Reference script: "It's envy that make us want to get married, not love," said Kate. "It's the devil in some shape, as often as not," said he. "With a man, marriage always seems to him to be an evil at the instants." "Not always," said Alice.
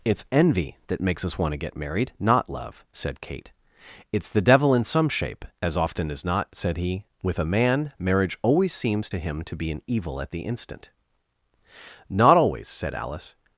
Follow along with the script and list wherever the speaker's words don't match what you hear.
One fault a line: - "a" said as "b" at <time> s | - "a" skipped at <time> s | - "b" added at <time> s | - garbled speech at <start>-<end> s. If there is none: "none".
- "make" said as "makes" at 1.0 s
- "instants" said as "instant" at 10.4 s